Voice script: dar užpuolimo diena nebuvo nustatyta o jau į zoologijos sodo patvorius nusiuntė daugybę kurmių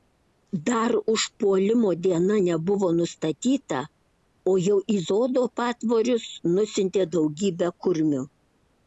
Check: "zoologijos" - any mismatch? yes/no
yes